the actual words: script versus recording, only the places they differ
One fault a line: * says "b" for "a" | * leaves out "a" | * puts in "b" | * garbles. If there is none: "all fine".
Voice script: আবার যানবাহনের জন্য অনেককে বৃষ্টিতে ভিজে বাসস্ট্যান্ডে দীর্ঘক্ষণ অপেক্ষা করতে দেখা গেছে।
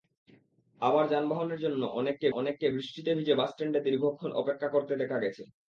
* puts in "অনেককে"